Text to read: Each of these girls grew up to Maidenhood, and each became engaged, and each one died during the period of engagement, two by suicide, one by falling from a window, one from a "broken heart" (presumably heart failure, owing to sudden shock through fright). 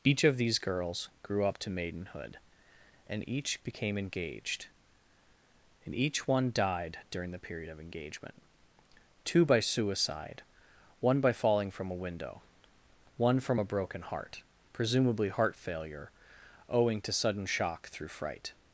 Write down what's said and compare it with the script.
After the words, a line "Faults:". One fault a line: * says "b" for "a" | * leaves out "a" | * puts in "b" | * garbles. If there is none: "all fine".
Each of these girls grew up to Maidenhood, and each became engaged, and each one died during the period of engagement, two by suicide, one by falling from a window, one from a "broken heart" (presumably heart failure, owing to sudden shock through fright).
Faults:
all fine